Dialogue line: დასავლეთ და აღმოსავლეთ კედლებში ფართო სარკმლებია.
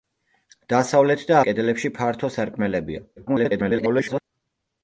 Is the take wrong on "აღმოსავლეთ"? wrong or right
wrong